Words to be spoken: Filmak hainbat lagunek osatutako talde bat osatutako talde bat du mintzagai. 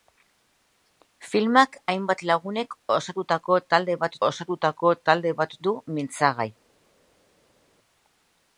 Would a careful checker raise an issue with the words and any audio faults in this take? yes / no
no